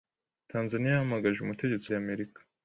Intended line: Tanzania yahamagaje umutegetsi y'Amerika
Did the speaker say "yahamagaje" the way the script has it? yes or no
yes